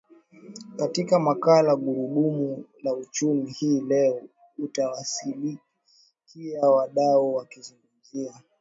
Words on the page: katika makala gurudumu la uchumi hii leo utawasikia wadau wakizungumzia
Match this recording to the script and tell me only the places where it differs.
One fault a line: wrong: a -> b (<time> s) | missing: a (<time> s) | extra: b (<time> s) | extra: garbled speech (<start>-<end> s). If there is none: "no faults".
no faults